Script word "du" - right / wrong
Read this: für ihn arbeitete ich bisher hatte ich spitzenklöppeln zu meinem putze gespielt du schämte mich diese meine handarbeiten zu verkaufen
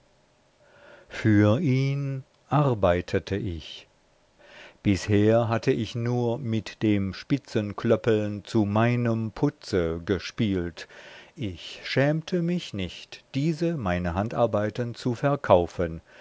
wrong